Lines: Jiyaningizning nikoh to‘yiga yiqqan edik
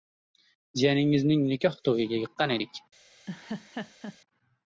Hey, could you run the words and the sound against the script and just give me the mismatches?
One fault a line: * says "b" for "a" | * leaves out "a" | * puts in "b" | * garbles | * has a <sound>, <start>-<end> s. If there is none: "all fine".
* has a laugh, 3.3-4.2 s